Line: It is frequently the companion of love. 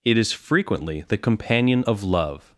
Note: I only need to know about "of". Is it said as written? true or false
true